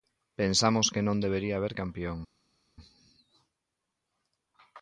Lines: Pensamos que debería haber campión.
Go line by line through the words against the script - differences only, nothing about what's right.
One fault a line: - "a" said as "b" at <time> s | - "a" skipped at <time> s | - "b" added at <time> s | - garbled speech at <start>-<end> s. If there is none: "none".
- "non" added at 1.1 s